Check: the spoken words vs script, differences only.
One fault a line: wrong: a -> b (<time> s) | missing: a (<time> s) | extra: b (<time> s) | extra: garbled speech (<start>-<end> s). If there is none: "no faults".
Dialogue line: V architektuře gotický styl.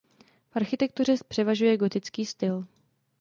extra: převažuje (1.3 s)